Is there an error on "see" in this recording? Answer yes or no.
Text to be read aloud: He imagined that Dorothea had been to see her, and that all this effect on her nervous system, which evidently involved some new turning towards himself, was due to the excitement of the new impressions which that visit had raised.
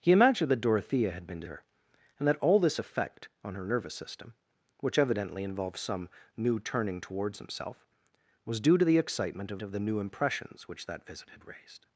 yes